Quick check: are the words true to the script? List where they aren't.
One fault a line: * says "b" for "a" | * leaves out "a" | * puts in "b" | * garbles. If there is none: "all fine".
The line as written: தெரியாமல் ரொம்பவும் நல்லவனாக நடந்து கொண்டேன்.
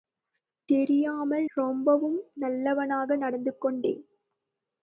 all fine